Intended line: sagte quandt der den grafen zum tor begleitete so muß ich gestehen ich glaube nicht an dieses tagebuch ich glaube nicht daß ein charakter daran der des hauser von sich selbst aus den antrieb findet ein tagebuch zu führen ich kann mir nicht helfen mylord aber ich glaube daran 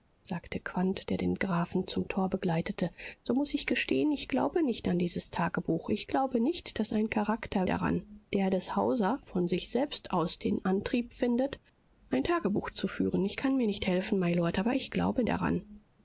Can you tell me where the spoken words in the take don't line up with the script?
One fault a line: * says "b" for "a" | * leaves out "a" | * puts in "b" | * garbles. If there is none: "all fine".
all fine